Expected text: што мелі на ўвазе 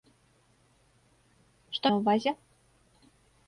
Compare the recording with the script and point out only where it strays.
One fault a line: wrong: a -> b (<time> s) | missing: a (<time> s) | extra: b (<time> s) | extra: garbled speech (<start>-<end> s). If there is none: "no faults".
missing: мелі (1.9 s)